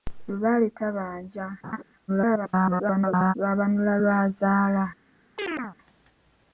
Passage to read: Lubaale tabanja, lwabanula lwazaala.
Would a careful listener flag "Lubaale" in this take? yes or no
no